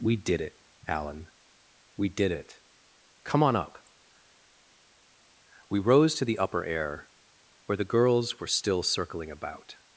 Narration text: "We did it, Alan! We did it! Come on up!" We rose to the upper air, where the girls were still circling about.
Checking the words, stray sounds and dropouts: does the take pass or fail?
pass